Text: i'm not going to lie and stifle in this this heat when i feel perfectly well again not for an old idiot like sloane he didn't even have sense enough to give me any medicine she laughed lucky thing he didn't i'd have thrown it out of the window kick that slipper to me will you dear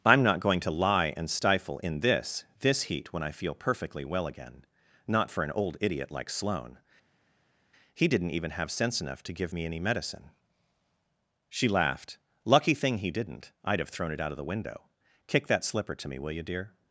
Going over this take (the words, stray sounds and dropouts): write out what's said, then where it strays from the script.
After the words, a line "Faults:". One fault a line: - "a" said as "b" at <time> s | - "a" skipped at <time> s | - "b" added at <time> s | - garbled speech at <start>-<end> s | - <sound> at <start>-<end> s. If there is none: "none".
i'm not going to lie and stifle in this this heat when i feel perfectly well again not for an old idiot like sloane he didn't even have sense enough to give me any medicine she laughed lucky thing he didn't i'd have thrown it out of the window kick that slipper to me will you dear
Faults:
none